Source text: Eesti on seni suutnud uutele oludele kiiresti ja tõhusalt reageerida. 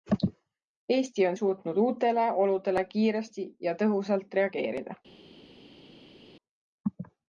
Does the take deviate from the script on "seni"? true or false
true